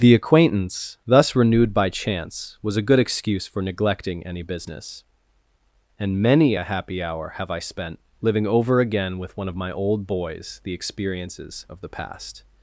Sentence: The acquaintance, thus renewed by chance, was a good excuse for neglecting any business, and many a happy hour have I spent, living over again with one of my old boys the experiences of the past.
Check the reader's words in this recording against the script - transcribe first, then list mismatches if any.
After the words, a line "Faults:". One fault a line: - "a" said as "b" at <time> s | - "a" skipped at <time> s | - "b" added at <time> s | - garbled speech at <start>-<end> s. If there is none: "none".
The acquaintance, thus renewed by chance, was a good excuse for neglecting any business, and many a happy hour have I spent, living over again with one of my old boys the experiences of the past.
Faults:
none